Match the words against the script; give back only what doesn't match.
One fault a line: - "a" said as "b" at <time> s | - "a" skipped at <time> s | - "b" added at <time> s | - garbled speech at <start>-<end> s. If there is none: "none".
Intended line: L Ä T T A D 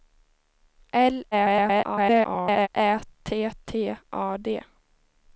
- garbled speech at 1.3-2.7 s